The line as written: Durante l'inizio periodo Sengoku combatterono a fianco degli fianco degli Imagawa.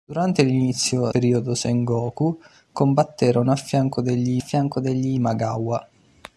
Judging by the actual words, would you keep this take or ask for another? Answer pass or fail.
pass